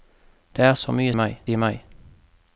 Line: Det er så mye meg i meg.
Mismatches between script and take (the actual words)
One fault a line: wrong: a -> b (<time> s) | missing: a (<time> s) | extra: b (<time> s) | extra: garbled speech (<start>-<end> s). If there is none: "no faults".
no faults